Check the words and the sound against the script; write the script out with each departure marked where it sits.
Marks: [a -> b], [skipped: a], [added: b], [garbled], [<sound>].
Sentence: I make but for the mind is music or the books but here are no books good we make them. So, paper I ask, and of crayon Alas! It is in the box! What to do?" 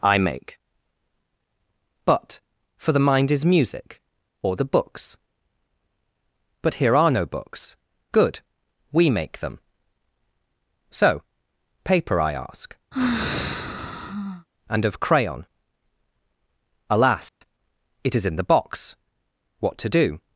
I make but for the mind is music or the books but here are no books good we make them. So, paper I ask, [sigh] and of crayon Alas! [dropout] It is in the box! What to do?"